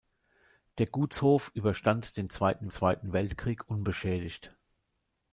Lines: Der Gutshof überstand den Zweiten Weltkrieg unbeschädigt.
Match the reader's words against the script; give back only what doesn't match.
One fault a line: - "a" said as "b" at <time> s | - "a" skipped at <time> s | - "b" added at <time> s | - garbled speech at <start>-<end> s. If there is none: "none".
- "Zweiten" added at 2.7 s